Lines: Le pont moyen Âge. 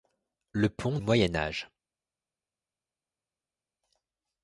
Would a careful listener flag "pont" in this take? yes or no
no